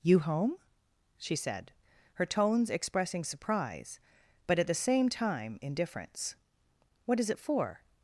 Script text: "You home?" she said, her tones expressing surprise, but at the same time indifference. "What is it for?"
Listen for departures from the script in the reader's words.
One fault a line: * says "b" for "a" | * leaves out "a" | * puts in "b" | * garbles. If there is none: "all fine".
all fine